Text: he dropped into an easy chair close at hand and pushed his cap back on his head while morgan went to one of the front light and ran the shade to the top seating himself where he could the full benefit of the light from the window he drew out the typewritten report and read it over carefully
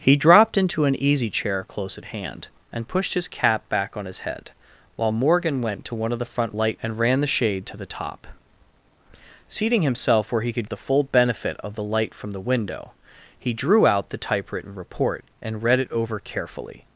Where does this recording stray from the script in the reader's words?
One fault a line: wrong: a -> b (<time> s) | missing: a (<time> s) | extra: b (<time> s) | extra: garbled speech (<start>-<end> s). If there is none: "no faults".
no faults